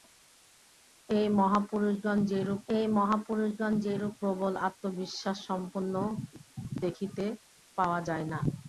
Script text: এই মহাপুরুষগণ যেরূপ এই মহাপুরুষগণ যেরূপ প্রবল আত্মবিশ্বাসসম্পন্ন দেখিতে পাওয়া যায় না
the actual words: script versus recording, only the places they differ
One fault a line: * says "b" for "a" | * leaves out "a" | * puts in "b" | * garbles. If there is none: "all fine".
all fine